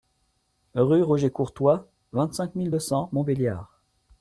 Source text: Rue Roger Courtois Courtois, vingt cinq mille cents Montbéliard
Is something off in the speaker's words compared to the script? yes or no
yes